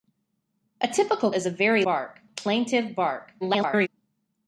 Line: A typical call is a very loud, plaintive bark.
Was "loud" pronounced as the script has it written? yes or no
no